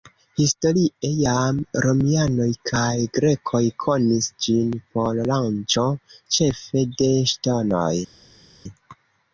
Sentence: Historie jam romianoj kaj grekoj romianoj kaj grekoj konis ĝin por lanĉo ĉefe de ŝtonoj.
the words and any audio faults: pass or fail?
fail